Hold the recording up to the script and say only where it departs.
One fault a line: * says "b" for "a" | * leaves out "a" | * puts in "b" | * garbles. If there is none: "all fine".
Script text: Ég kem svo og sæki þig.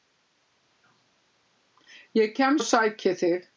* leaves out "svo"